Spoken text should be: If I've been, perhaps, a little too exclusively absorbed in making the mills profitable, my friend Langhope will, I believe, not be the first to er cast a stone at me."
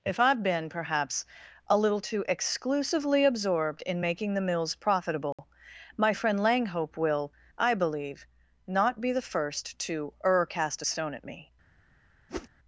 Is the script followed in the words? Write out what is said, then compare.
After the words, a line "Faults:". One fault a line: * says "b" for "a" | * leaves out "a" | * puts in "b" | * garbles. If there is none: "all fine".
If I've been, perhaps, a little too exclusively absorbed in making the mills profitable, my friend Langhope will, I believe, not be the first to er cast a stone at me."
Faults:
all fine